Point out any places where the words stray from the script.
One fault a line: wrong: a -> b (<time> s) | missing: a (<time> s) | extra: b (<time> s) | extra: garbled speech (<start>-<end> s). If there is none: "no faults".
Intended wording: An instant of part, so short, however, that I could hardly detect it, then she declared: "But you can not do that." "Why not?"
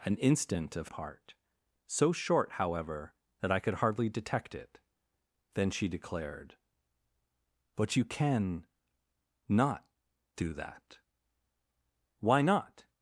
no faults